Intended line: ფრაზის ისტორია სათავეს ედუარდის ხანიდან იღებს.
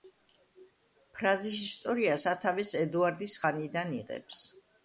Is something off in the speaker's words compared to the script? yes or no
no